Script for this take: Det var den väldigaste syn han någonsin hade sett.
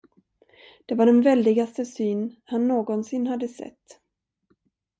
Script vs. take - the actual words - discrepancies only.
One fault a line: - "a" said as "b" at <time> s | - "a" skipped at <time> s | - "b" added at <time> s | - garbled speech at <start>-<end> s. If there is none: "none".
none